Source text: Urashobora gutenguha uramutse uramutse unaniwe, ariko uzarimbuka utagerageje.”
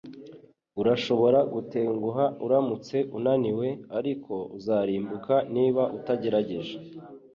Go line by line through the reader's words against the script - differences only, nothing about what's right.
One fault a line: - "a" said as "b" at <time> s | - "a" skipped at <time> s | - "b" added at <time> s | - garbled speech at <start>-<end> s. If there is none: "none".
- "uramutse" skipped at 3.0 s
- "niba" added at 5.5 s